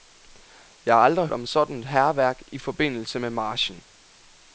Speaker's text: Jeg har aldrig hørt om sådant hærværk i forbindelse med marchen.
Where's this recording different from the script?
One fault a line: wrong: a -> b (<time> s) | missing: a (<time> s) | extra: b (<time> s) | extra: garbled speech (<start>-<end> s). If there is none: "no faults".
missing: hørt (1.3 s)